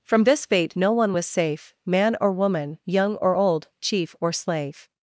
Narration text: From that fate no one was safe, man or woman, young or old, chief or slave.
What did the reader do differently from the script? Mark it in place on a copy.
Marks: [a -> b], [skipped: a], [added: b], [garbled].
From [that -> this] fate no one was safe, man or woman, young or old, chief or slave.